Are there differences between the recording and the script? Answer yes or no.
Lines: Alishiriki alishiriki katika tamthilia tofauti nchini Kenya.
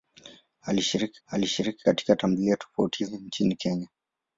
no